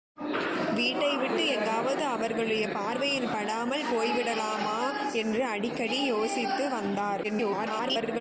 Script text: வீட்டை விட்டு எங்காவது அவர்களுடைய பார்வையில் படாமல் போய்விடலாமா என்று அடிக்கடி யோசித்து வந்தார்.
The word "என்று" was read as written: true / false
true